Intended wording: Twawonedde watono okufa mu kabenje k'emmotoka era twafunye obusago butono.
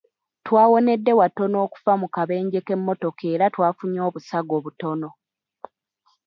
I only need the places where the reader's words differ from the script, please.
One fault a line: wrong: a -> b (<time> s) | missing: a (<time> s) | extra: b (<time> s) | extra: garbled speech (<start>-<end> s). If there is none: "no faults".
no faults